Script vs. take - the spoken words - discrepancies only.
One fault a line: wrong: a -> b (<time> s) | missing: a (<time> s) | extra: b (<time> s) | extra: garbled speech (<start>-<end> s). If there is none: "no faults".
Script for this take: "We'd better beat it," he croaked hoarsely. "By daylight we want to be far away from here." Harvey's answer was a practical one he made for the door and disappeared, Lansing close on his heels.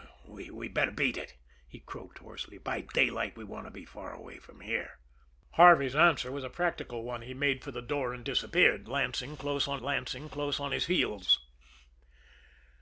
extra: Lansing close on (9.8 s)